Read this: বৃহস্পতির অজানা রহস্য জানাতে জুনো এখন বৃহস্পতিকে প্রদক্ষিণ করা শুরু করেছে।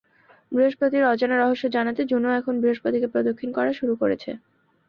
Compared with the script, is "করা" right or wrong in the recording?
right